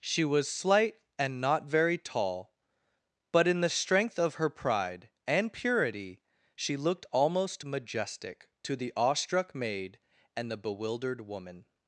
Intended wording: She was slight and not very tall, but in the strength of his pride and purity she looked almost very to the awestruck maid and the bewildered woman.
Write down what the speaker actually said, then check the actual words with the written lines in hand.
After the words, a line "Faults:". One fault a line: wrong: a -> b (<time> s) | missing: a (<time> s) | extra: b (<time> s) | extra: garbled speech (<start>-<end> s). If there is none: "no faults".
She was slight and not very tall, but in the strength of her pride and purity she looked almost majestic to the awestruck maid and the bewildered woman.
Faults:
wrong: his -> her (4.3 s)
wrong: very -> majestic (7.6 s)